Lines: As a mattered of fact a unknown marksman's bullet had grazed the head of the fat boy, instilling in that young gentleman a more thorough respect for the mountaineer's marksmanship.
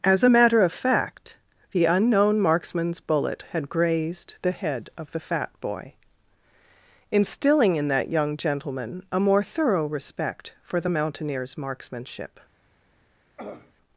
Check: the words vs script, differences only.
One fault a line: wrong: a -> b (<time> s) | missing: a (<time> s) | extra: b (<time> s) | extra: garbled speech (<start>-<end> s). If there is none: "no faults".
wrong: mattered -> matter (0.3 s)
wrong: a -> the (1.7 s)